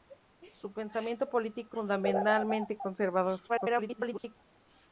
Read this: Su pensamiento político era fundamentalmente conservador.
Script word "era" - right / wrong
wrong